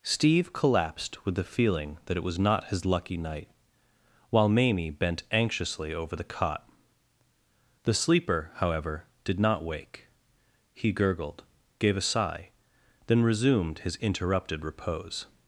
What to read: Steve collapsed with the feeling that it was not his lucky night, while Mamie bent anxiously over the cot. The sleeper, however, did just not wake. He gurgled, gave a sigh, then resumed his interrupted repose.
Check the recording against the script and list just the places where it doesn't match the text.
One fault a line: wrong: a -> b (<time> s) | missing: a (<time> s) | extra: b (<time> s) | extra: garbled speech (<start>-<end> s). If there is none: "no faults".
missing: just (9.4 s)